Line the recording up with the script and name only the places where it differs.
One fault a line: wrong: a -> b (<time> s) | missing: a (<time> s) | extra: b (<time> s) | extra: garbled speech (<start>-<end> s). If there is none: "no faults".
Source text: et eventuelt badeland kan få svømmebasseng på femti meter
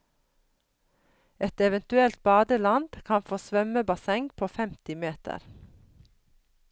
no faults